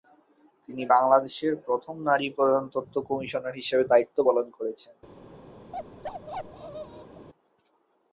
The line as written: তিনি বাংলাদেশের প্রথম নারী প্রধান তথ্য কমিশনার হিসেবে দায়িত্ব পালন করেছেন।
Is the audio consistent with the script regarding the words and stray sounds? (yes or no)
no